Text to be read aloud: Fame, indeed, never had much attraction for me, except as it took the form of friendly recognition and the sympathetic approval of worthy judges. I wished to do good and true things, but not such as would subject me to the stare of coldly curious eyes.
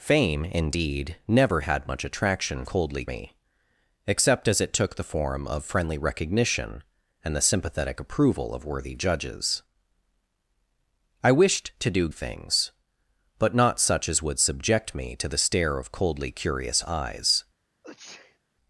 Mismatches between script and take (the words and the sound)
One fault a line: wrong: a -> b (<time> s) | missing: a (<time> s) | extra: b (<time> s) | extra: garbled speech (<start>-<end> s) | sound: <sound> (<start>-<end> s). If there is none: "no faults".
wrong: for -> coldly (2.7 s)
missing: good and true (12.1 s)
sound: sneeze (17.8-18.4 s)